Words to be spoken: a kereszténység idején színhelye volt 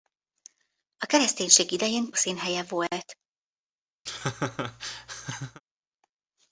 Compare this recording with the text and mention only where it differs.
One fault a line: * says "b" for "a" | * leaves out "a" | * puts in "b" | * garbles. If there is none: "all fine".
all fine